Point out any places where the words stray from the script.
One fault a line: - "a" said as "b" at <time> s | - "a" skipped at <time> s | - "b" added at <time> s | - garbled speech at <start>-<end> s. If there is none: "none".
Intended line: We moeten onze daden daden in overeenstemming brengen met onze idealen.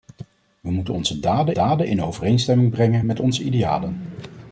none